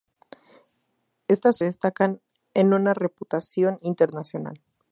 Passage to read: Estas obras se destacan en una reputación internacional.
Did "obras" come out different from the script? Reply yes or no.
yes